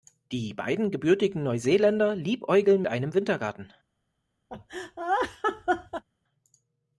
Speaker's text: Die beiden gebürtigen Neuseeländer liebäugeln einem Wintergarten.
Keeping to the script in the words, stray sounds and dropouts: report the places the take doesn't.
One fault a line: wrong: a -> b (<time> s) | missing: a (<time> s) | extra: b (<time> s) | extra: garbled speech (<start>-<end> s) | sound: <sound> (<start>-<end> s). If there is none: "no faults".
sound: laugh (4.5-6.0 s)